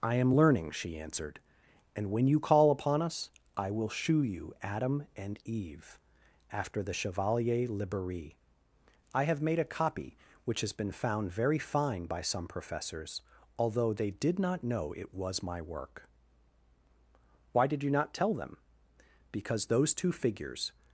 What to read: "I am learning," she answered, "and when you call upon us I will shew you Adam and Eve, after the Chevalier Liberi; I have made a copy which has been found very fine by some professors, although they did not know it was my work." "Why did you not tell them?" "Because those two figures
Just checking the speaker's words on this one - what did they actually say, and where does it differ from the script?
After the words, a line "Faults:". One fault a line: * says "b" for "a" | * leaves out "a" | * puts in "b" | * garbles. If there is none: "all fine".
"I am learning," she answered, "and when you call upon us I will shew you Adam and Eve, after the Chevalier Liberi; I have made a copy which has been found very fine by some professors, although they did not know it was my work." "Why did you not tell them?" "Because those two figures
Faults:
all fine